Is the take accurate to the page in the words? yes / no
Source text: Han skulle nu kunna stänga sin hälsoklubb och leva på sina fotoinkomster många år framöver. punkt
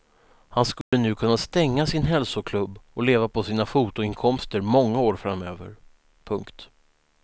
yes